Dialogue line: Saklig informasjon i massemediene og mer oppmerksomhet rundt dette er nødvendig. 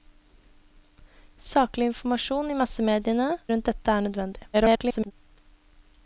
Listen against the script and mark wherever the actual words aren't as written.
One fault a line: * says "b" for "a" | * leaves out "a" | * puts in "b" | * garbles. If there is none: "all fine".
* leaves out "og mer oppmerksomhet"
* garbles